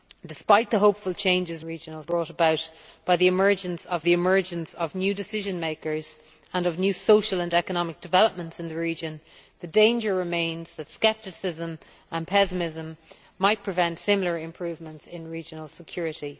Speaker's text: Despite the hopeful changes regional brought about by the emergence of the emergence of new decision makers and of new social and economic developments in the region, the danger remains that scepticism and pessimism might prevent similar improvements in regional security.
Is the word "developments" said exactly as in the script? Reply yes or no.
yes